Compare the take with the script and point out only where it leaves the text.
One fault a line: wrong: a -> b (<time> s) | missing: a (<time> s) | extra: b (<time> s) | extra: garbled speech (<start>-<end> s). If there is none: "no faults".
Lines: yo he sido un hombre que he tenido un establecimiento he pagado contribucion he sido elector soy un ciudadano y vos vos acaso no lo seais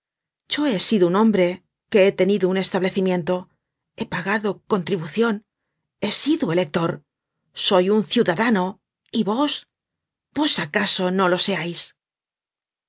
no faults